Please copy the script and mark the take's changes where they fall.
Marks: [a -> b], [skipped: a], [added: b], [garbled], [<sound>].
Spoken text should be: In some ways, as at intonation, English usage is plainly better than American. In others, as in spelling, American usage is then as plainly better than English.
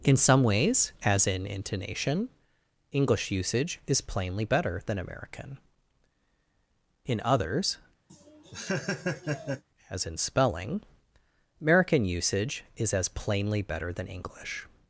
In some ways, as [at -> in] intonation, English usage is plainly better than American. In others, [laugh] as in spelling, American usage is [skipped: then] as plainly better than English.